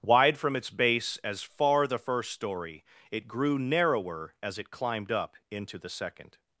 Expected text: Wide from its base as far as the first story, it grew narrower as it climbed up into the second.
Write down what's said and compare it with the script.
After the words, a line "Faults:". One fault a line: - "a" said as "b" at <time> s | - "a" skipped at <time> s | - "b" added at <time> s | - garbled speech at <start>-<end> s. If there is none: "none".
Wide from its base as far the first story, it grew narrower as it climbed up into the second.
Faults:
- "as" skipped at 1.9 s